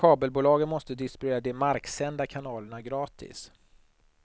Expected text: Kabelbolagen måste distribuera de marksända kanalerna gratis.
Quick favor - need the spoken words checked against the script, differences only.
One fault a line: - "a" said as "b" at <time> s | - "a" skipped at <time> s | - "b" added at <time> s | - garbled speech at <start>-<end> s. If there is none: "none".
none